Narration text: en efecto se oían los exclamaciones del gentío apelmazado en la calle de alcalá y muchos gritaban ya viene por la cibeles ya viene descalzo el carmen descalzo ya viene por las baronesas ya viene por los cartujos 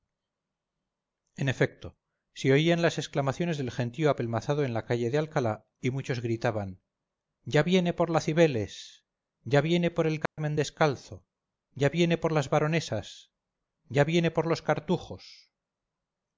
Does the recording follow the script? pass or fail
fail